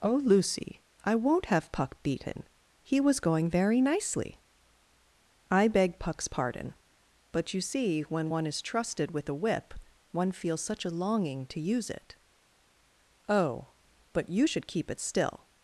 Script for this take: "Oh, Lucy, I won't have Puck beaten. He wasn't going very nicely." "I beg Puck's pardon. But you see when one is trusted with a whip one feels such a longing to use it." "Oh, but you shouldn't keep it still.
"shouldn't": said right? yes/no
no